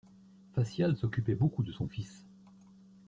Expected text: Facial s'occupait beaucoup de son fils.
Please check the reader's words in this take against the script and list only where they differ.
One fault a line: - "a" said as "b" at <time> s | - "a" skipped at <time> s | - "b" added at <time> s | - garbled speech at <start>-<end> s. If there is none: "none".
none